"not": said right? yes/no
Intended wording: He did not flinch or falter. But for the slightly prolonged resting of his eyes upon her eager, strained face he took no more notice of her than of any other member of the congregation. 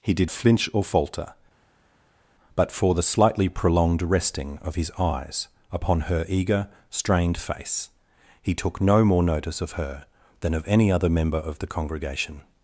no